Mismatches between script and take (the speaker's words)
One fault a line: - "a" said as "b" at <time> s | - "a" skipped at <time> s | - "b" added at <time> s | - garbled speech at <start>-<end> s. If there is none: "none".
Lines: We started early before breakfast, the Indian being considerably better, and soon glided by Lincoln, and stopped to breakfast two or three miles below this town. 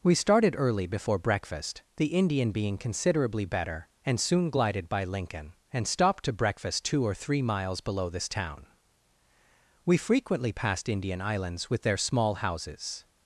- "We frequently passed Indian islands with their small houses" added at 9.8 s